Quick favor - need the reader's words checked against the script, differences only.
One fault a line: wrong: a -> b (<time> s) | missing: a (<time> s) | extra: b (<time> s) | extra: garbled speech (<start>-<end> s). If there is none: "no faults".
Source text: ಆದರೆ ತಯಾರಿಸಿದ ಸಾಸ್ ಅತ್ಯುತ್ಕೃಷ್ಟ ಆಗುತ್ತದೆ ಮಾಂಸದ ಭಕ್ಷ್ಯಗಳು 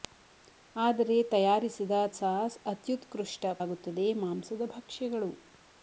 no faults